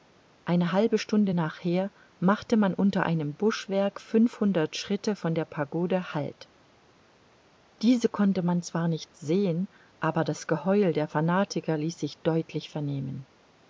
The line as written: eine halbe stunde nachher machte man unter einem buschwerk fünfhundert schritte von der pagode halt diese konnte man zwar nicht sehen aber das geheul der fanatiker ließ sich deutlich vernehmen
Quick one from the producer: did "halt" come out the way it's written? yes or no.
yes